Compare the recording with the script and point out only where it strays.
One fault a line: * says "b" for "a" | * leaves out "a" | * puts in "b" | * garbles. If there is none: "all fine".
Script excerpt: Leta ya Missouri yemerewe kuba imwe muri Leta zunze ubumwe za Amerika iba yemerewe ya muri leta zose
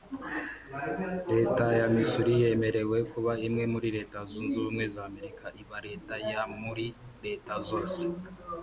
* says "leta" for "yemerewe"